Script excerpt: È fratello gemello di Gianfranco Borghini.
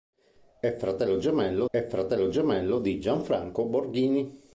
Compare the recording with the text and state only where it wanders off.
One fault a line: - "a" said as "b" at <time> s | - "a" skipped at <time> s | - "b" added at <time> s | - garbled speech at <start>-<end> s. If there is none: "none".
- "è fratello gemello" added at 1.7 s